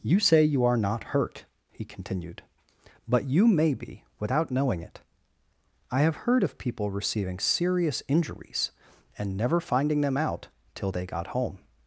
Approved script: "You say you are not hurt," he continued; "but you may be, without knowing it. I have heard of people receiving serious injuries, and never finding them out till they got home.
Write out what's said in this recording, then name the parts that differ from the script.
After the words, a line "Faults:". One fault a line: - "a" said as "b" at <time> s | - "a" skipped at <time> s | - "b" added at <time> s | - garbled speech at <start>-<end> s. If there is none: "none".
"You say you are not hurt," he continued; "but you may be, without knowing it. I have heard of people receiving serious injuries, and never finding them out till they got home.
Faults:
none